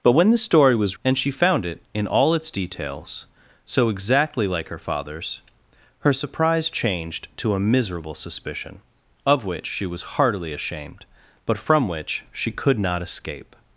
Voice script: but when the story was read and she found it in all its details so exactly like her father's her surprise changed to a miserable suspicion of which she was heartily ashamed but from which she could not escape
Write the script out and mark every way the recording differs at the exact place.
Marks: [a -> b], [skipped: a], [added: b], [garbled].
but when the story was [skipped: read] and she found it in all its details so exactly like her father's her surprise changed to a miserable suspicion of which she was heartily ashamed but from which she could not escape